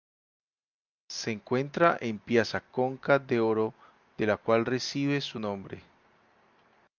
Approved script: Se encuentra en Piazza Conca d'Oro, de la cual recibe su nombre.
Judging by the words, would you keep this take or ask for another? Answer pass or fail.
pass